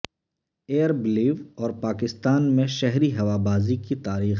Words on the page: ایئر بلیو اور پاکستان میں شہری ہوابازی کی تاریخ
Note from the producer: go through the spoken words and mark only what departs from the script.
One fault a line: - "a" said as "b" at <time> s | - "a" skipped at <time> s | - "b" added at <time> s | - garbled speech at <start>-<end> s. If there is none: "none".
none